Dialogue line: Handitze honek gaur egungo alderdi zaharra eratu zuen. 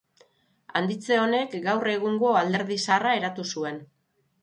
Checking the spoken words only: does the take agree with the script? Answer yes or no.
yes